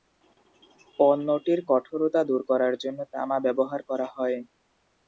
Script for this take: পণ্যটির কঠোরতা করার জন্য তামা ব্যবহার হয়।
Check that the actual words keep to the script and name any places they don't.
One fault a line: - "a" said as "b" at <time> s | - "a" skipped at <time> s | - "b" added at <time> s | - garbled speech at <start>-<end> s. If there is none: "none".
- "দূর" added at 2.3 s
- "করা" added at 3.9 s